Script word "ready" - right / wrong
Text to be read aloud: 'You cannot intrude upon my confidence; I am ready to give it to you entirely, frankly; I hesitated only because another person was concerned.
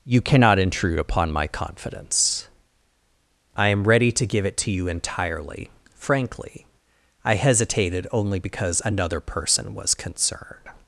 right